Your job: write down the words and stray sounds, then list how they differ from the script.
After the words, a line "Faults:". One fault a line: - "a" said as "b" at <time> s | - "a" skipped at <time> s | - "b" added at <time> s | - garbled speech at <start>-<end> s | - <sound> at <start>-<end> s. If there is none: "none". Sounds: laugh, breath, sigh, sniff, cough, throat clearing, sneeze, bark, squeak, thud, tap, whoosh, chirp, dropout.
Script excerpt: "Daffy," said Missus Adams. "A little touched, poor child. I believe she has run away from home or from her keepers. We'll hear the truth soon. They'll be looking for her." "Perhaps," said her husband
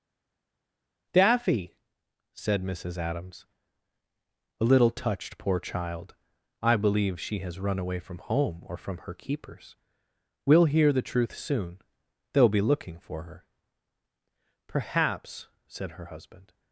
"Daffy," said Missus Adams. "A little touched, poor child. I believe she has run away from home or from her keepers. We'll hear the truth soon. They'll be looking for her." "Perhaps," said her husband
Faults:
none